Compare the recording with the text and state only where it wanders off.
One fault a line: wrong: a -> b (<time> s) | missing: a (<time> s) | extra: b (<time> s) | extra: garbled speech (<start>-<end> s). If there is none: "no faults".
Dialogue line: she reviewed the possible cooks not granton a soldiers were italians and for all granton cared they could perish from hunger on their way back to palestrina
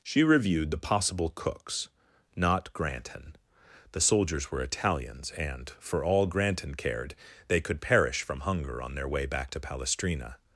wrong: a -> the (3.9 s)